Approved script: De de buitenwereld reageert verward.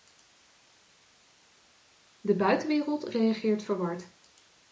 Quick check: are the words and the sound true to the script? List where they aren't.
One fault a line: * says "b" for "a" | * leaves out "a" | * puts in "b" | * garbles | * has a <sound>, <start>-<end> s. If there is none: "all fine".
* leaves out "de"